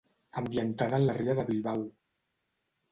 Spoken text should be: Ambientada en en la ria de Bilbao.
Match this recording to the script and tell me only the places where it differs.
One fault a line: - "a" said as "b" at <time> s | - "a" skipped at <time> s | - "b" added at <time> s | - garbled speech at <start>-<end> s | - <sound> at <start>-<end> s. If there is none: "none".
- "en" skipped at 1.1 s